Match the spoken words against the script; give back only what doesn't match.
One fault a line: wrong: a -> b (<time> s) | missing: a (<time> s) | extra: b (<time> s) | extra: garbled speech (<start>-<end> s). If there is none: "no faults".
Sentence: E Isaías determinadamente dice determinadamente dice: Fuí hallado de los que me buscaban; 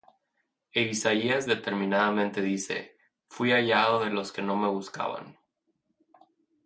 missing: determinadamente dice (3.0 s)
extra: no (4.4 s)